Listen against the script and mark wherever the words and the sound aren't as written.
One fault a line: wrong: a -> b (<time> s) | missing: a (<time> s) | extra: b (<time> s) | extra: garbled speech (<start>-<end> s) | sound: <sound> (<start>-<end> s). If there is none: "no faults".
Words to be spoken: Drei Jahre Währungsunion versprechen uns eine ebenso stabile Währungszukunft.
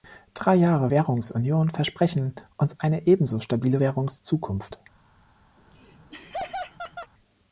sound: laugh (5.6-7.1 s)